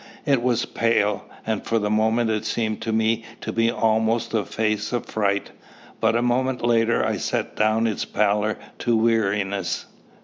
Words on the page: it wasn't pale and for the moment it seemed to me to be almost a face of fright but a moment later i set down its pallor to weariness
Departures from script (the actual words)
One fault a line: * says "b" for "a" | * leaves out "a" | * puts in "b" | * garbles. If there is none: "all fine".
* says "was" for "wasn't"